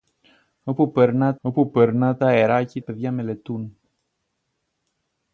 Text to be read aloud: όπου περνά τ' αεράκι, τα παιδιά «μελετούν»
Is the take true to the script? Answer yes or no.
no